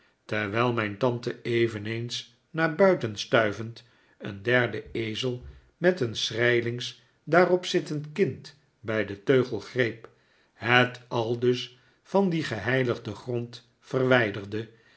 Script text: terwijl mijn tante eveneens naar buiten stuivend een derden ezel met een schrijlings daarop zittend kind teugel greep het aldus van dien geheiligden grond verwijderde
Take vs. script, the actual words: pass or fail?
fail